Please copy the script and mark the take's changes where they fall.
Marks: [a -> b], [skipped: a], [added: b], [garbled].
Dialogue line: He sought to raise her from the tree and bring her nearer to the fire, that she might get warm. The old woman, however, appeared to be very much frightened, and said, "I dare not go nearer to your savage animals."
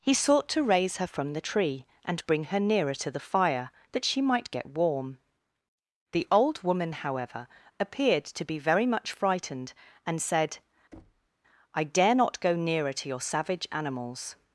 He sought to raise her from the tree and bring her nearer to the fire, that she might get warm. The old woman, however, appeared to be very much frightened, and said, "I dare not go nearer to your savage animals."